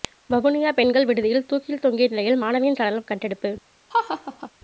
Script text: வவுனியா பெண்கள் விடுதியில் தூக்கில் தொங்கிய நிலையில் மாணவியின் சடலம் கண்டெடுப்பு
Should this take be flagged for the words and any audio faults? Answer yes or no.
yes